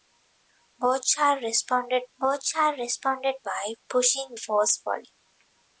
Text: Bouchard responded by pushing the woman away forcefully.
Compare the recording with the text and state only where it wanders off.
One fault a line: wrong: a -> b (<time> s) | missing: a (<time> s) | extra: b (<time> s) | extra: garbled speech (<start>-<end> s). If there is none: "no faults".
extra: bouchard responded (2.2 s)
missing: the woman away (4.4 s)